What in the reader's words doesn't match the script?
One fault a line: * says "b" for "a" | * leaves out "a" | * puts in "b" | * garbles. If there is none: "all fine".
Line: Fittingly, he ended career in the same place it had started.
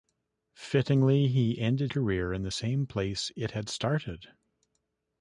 all fine